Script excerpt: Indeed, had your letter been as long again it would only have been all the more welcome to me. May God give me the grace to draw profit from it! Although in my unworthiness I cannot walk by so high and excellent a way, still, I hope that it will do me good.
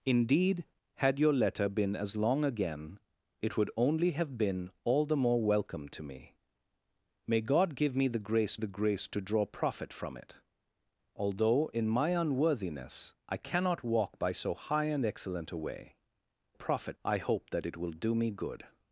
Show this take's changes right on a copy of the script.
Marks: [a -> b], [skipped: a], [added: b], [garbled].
Indeed, had your letter been as long again it would only have been all the more welcome to me. May God give me the grace [added: the grace] to draw profit from it! Although in my unworthiness I cannot walk by so high and excellent a way, [still, -> profit] I hope that it will do me good.